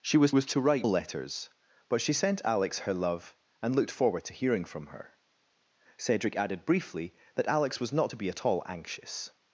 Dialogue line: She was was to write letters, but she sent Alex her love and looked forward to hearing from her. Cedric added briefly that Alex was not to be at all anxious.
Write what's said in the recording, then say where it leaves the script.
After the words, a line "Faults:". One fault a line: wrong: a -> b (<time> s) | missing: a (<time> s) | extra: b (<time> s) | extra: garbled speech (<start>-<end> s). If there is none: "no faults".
She was was to write letters, but she sent Alex her love and looked forward to hearing from her. Cedric added briefly that Alex was not to be at all anxious.
Faults:
no faults